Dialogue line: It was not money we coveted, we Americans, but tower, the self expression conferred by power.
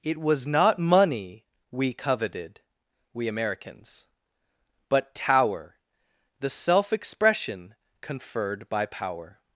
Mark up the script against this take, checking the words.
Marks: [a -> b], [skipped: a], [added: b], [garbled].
It was not money we coveted, we Americans, but tower, the self expression conferred by power.